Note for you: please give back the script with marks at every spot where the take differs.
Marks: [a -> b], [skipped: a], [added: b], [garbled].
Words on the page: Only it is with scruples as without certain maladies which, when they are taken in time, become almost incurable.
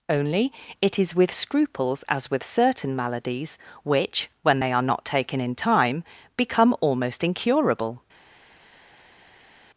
Only it is with scruples as [without -> with] certain maladies which, when they are [added: not] taken in time, become almost incurable.